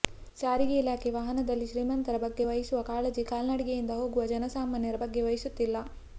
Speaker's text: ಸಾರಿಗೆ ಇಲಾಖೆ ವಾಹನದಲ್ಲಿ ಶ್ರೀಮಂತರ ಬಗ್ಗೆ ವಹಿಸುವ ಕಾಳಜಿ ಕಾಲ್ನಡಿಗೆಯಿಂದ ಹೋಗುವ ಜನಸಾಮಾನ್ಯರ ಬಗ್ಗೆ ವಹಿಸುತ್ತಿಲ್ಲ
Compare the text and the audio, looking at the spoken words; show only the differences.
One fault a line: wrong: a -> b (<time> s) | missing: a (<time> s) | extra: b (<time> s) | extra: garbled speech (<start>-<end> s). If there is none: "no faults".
no faults